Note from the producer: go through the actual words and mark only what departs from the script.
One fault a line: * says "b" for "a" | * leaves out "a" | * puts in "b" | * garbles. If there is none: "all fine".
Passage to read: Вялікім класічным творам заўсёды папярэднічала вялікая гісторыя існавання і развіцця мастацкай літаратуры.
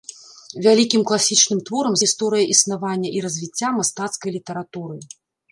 * leaves out "заўсёды папярэднічала вялікая"